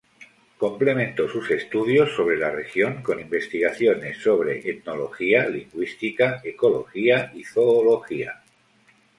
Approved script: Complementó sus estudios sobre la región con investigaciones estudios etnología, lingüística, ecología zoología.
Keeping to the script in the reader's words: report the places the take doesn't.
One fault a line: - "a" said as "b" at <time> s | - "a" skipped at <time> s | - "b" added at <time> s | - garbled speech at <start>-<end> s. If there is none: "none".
- "estudios" said as "sobre" at 4.2 s
- "y" added at 7.3 s